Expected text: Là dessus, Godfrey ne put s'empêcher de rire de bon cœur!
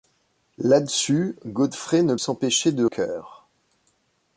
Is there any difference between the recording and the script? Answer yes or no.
yes